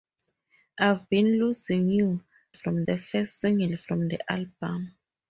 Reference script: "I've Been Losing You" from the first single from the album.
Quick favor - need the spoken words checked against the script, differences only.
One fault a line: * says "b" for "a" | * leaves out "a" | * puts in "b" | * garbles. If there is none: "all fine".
all fine